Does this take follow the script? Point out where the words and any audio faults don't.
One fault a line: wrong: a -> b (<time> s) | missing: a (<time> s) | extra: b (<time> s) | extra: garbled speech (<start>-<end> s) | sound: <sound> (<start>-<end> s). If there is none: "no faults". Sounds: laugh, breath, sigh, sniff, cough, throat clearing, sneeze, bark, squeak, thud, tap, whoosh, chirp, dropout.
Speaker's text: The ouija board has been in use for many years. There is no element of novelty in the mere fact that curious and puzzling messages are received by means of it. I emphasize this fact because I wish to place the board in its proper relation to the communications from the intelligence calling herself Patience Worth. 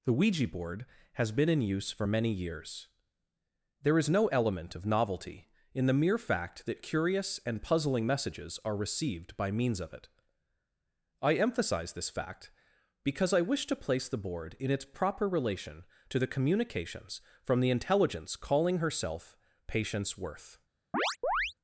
sound: chirp (20.9-21.5 s)